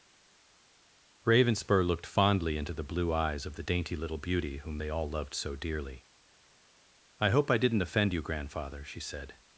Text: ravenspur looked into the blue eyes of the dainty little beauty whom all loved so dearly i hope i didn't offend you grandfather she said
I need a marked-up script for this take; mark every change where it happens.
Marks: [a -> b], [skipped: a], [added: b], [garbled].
ravenspur looked [added: fondly] into the blue eyes of the dainty little beauty whom [added: they] all loved so dearly i hope i didn't offend you grandfather she said